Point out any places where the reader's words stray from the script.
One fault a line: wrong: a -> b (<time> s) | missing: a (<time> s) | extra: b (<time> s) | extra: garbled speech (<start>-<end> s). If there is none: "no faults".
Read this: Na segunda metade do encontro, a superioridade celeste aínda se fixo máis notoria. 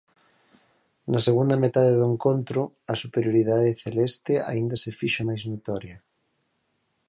no faults